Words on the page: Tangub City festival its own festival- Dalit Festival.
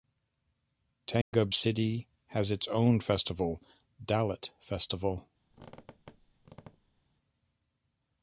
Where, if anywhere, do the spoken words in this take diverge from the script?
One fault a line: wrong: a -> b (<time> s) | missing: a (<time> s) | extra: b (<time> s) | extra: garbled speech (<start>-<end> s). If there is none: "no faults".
wrong: festival -> has (2.3 s)